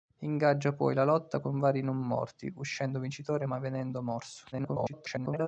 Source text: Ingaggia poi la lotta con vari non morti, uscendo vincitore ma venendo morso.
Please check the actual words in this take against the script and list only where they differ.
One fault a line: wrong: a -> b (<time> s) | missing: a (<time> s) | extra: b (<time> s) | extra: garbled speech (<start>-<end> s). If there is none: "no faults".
extra: garbled speech (4.5-5.5 s)